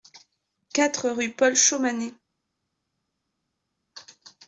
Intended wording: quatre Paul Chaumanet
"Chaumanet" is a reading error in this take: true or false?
false